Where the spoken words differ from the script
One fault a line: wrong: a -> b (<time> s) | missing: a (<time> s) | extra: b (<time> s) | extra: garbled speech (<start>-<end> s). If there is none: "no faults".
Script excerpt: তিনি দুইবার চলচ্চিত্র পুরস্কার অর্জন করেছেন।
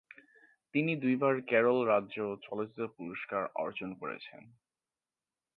extra: কেরল রাজ্য (1.5 s)